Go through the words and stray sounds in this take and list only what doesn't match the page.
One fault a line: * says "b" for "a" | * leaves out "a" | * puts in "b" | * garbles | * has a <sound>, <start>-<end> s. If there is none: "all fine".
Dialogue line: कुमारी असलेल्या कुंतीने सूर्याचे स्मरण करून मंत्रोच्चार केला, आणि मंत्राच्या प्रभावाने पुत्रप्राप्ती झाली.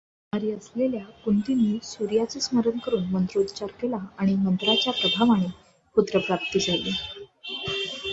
all fine